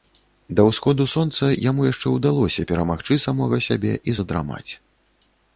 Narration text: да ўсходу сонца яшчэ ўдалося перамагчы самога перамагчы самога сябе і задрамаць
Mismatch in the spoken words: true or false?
true